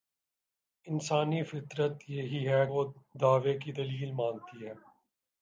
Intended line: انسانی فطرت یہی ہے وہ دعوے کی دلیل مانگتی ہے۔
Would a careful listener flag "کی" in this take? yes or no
no